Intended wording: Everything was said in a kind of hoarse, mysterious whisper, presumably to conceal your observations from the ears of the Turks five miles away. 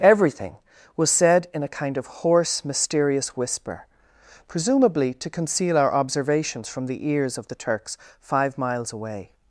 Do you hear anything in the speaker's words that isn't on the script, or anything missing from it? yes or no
yes